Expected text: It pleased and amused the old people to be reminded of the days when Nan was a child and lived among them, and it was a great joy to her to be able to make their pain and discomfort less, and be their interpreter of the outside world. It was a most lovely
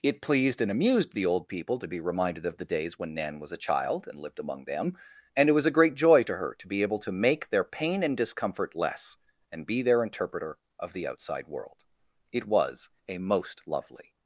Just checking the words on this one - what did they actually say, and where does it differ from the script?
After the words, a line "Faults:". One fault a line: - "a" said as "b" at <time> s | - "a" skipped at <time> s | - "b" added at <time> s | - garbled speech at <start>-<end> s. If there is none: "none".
It pleased and amused the old people to be reminded of the days when Nan was a child and lived among them, and it was a great joy to her to be able to make their pain and discomfort less, and be their interpreter of the outside world. It was a most lovely
Faults:
none